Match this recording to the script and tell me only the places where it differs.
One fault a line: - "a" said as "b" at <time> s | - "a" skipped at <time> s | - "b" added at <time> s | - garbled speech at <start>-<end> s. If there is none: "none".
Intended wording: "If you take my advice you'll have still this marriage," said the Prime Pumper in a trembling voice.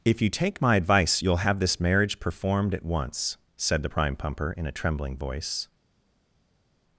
- "still" skipped at 1.6 s
- "performed at once" added at 2.2 s